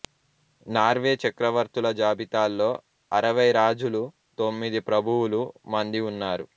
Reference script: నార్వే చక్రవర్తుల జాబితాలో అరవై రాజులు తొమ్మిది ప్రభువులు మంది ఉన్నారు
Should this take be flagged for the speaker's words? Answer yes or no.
no